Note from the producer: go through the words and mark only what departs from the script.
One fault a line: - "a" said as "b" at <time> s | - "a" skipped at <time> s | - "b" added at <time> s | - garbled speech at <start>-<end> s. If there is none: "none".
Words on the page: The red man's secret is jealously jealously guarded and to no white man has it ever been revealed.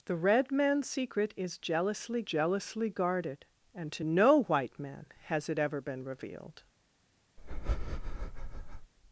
none